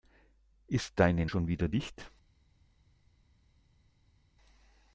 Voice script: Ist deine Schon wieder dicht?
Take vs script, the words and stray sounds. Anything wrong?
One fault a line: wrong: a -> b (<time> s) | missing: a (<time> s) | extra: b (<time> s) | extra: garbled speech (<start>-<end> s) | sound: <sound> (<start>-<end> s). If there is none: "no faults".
no faults